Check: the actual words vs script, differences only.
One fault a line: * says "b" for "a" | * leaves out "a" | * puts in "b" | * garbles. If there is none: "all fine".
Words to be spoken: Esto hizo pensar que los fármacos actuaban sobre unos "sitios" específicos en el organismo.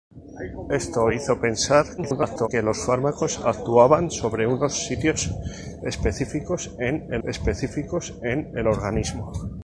* garbles
* puts in "específicos en el"